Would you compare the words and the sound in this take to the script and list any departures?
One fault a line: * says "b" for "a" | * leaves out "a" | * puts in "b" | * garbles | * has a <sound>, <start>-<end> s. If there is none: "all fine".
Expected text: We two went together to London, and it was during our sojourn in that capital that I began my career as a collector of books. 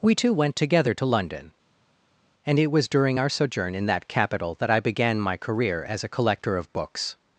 all fine